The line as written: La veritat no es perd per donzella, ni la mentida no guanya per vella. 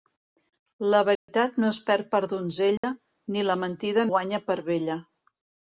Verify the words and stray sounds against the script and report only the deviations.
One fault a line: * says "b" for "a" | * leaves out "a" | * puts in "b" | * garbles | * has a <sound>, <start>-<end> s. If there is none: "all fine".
* has a dropout, 1.2-1.3 s
* has a dropout, 2.8-2.8 s
* leaves out "no"